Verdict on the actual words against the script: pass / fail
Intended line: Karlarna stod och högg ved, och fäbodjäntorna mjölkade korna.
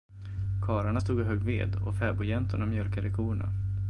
pass